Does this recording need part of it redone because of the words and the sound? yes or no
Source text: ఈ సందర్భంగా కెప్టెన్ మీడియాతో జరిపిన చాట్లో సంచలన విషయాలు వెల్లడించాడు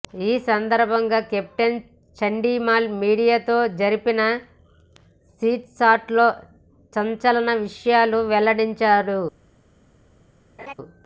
yes